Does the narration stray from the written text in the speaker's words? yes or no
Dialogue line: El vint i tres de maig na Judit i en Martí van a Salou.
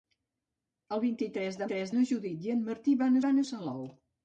yes